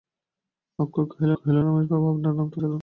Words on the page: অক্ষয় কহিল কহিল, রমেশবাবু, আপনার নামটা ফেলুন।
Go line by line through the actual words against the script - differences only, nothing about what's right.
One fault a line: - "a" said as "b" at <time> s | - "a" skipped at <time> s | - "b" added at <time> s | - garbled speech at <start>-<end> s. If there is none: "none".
none